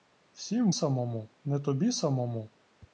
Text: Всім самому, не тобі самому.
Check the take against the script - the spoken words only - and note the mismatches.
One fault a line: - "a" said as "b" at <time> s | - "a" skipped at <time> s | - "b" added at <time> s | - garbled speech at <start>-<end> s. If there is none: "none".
none